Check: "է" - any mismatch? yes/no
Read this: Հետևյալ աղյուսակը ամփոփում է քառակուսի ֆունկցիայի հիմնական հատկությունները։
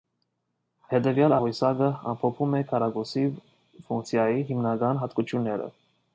no